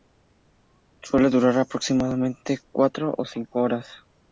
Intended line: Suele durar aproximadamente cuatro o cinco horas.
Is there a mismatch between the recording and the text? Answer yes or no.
no